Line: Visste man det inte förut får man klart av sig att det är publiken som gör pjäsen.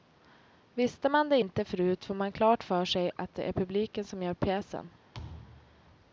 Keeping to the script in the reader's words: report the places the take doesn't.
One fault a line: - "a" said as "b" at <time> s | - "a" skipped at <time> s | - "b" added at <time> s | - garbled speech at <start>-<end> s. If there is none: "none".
- "av" said as "för" at 2.6 s